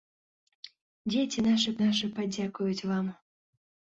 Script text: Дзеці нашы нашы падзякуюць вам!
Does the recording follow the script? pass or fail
pass